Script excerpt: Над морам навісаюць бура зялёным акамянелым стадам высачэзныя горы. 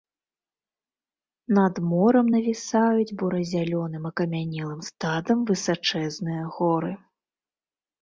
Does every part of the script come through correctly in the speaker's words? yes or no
yes